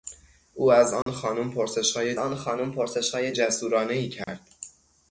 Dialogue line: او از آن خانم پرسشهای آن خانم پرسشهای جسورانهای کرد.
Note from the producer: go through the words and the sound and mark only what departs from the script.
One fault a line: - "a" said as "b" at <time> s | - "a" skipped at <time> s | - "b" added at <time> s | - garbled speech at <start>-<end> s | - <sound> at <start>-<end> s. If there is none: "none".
- dropout at 1.0-1.1 s
- dropout at 4.2-4.3 s